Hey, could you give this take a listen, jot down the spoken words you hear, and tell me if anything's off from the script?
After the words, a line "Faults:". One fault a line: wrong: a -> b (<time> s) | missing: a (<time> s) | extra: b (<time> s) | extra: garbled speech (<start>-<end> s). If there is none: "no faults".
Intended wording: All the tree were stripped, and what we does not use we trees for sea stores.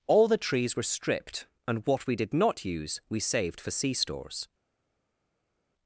All the trees were stripped, and what we did not use we saved for sea stores.
Faults:
wrong: tree -> trees (0.4 s)
wrong: does -> did (2.1 s)
wrong: trees -> saved (3.2 s)